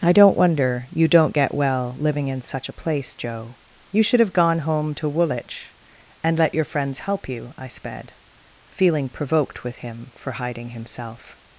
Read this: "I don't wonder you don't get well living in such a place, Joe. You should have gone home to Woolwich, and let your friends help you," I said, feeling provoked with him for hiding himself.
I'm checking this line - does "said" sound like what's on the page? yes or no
no